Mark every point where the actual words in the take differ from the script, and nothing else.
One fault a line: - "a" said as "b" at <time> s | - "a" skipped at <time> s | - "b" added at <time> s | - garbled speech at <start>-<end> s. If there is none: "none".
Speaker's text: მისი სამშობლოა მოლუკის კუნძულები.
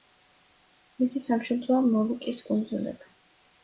none